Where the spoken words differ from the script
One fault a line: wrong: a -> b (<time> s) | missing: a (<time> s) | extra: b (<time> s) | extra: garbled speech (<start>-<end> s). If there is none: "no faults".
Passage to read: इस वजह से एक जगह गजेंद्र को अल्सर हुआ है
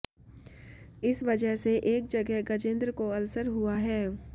no faults